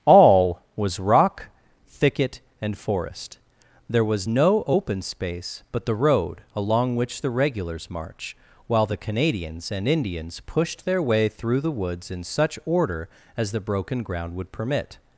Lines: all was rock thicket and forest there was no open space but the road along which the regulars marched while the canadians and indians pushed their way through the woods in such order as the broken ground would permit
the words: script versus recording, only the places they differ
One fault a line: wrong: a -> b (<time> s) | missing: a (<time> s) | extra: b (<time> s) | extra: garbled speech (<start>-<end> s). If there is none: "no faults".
wrong: marched -> march (7.9 s)